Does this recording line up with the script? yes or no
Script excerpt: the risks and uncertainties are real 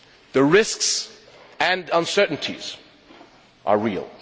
yes